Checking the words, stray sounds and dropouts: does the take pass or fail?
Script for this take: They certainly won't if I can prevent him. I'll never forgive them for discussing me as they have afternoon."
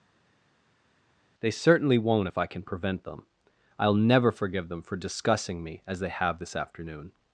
fail